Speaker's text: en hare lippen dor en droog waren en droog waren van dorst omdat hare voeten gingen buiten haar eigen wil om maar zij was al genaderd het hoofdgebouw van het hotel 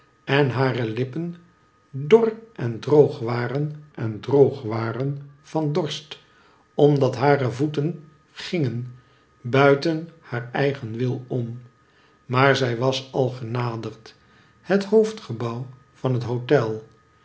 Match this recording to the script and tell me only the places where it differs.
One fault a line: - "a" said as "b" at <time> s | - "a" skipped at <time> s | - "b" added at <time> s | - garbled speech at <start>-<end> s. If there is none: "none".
none